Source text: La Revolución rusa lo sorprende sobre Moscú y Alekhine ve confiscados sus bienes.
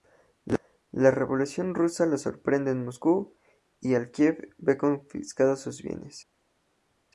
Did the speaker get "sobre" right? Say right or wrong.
wrong